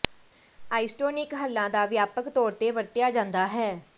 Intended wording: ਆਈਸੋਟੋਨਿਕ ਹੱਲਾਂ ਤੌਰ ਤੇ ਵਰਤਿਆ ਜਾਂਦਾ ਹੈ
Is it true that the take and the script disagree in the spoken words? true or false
true